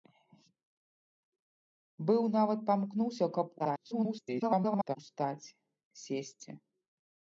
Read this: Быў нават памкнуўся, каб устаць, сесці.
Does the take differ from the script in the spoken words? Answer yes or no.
yes